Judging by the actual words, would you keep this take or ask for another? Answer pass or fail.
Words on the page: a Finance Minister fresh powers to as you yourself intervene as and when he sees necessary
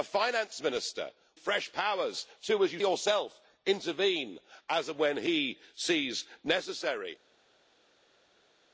pass